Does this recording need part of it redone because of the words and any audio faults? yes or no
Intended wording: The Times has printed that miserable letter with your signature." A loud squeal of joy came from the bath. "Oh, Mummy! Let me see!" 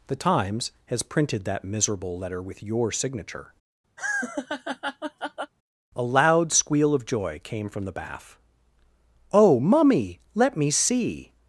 yes